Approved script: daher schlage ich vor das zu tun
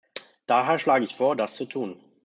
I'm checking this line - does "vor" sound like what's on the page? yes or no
yes